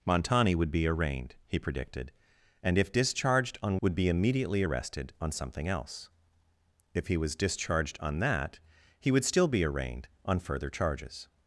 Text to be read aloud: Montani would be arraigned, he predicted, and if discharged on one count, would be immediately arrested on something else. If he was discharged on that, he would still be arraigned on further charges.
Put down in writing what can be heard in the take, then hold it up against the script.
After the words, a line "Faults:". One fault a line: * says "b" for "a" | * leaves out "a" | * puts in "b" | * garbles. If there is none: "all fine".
Montani would be arraigned, he predicted, and if discharged on would be immediately arrested on something else. If he was discharged on that, he would still be arraigned on further charges.
Faults:
* leaves out "one count"